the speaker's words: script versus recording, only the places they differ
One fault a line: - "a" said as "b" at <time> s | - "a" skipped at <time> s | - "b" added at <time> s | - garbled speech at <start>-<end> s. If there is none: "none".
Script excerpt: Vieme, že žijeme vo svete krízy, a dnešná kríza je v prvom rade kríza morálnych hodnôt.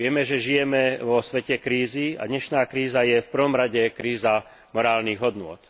none